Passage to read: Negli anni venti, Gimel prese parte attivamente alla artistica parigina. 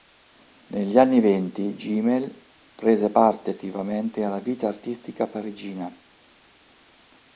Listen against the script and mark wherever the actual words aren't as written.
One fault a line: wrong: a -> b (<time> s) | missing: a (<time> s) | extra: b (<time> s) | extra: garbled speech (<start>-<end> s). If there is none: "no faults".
extra: vita (4.4 s)